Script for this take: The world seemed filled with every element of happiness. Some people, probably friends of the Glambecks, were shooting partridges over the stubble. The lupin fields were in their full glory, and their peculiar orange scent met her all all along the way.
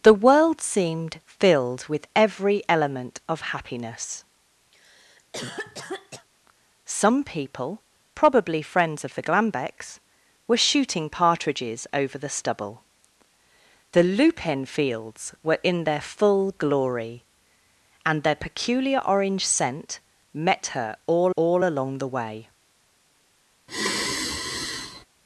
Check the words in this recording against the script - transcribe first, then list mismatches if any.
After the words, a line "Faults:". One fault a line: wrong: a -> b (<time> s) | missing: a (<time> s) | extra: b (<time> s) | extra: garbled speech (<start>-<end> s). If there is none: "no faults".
The world seemed filled with every element of happiness. Some people, probably friends of the Glambecks, were shooting partridges over the stubble. The lupin fields were in their full glory, and their peculiar orange scent met her all all along the way.
Faults:
no faults